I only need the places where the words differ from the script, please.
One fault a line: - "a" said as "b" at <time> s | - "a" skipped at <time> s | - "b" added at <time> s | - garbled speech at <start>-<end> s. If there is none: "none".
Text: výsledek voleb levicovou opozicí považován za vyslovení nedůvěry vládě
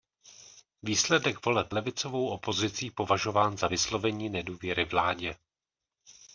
none